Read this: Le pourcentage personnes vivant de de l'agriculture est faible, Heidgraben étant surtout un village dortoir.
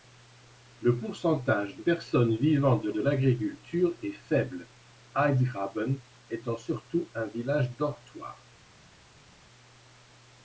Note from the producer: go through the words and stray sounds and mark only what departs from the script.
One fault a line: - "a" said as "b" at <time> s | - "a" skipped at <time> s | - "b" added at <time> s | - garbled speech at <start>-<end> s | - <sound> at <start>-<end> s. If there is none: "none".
none